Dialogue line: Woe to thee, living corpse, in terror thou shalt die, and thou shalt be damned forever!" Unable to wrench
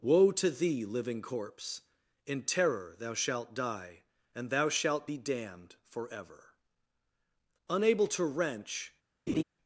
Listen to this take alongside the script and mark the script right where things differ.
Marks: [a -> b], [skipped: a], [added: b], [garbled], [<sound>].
Woe to thee, living corpse, in terror thou shalt die, and thou shalt be damned forever!" Unable to wrench [laugh]